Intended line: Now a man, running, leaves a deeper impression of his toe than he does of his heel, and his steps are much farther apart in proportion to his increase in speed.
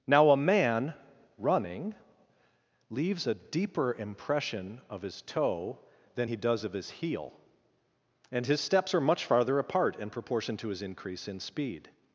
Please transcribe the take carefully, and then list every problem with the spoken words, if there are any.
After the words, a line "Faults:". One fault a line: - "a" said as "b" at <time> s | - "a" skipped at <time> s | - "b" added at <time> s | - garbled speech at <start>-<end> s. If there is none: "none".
Now a man, running, leaves a deeper impression of his toe than he does of his heel, and his steps are much farther apart in proportion to his increase in speed.
Faults:
none